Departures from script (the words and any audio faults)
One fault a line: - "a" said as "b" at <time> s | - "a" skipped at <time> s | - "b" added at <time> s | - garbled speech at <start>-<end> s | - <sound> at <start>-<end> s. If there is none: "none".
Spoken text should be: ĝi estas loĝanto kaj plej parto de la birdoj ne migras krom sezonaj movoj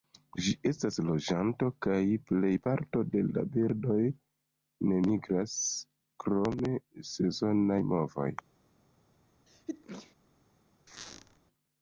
- sneeze at 9.5-10.2 s
- squeak at 10.9-11.4 s